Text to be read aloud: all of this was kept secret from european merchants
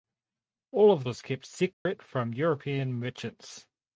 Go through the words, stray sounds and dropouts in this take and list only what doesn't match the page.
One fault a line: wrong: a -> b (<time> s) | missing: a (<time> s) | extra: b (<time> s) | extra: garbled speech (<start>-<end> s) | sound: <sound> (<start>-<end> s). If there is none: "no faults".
missing: this (1.1 s)
sound: dropout (1.7-1.9 s)